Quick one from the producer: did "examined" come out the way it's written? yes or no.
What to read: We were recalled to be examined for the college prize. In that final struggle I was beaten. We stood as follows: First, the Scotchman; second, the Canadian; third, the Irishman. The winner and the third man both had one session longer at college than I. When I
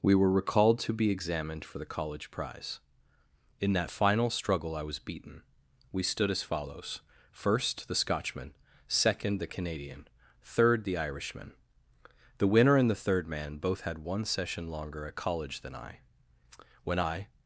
yes